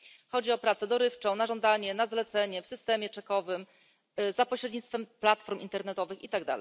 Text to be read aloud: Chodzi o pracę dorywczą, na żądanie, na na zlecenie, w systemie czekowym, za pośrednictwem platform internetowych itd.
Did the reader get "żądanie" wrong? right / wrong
right